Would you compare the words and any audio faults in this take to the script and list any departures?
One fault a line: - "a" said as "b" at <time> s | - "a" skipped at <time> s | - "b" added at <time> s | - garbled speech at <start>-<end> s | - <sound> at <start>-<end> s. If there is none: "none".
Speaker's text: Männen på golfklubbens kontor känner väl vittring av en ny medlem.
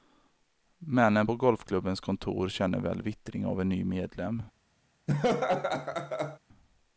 - laugh at 5.1-6.4 s